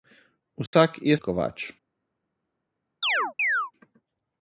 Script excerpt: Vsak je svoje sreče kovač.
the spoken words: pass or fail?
fail